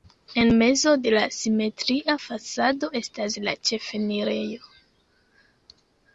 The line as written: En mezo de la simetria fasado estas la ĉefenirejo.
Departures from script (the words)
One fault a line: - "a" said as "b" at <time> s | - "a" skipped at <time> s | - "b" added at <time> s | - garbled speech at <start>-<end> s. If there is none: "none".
none